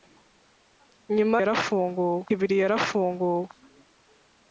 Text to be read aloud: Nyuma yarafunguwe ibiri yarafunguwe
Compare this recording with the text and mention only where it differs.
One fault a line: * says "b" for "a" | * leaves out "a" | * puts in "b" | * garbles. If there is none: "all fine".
all fine